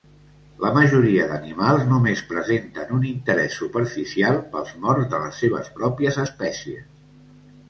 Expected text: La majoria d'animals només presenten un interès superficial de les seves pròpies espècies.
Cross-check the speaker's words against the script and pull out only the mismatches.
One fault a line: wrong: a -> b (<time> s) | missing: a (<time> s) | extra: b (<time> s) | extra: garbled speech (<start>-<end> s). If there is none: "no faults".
extra: pels morts (4.5 s)